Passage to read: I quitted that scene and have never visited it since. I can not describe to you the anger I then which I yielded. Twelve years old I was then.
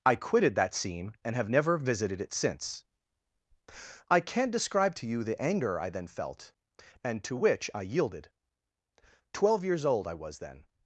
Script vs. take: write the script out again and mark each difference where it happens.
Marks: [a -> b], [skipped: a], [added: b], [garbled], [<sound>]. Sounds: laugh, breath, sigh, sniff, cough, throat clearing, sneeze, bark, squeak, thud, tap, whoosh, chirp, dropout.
I quitted that scene and have never visited it since. I can not describe to you the anger I then [added: felt and to] which I yielded. Twelve years old I was then.